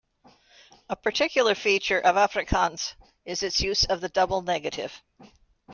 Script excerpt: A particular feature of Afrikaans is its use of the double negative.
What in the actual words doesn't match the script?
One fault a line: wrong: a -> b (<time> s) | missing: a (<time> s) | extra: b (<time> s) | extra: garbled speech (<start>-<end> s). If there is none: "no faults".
no faults